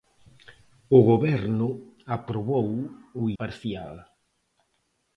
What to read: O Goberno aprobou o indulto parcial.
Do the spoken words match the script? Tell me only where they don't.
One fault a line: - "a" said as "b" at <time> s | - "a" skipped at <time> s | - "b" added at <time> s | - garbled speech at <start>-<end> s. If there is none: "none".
- "indulto" skipped at 3.2 s